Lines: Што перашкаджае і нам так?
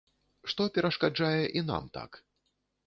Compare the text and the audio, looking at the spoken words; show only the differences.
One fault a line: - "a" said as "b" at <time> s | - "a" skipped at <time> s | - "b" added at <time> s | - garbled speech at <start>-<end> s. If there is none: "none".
none